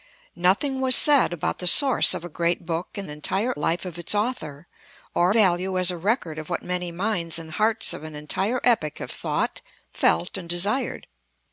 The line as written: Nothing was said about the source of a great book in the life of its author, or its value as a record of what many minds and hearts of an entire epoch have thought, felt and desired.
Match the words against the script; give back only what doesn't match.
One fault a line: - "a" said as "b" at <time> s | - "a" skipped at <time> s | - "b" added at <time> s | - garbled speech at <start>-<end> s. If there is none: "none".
- "the" said as "entire" at 3.1 s
- "its" skipped at 5.3 s